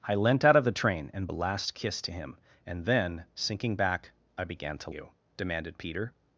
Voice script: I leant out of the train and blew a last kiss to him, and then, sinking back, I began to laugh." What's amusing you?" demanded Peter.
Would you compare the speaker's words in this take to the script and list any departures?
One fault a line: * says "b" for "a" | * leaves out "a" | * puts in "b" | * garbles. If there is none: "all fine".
* leaves out "blew"
* leaves out "laugh What's amusing"